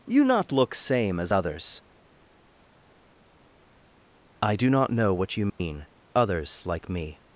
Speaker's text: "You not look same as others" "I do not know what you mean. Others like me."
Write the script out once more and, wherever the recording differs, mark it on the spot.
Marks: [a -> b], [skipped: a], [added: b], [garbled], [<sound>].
"You not look same as others" "I do not know what you mean. [dropout] Others like me."